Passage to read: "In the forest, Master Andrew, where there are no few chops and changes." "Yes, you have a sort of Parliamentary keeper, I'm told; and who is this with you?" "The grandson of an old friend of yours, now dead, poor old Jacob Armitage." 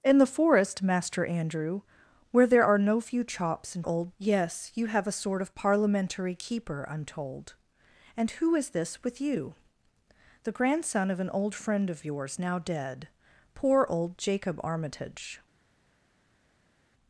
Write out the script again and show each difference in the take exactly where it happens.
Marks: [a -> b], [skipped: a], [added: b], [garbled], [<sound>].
"In the forest, Master Andrew, where there are no few chops and [changes." -> old] "Yes, you have a sort of Parliamentary keeper, I'm told; and who is this with you?" "The grandson of an old friend of yours, now dead, poor old Jacob Armitage."